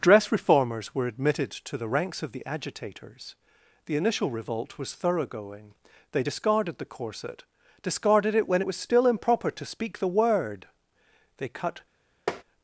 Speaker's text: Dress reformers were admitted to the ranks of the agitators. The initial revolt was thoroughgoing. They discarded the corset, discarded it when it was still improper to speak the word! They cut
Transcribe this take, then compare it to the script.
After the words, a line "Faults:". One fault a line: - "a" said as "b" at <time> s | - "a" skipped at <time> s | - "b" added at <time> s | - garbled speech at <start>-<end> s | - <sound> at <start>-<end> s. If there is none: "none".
Dress reformers were admitted to the ranks of the agitators. The initial revolt was thoroughgoing. They discarded the corset, discarded it when it was still improper to speak the word! They cut
Faults:
- tap at 12.3-12.4 s